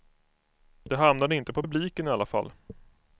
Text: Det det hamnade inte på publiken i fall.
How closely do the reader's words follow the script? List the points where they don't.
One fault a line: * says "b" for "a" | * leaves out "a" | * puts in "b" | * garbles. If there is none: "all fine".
* leaves out "det"
* puts in "alla"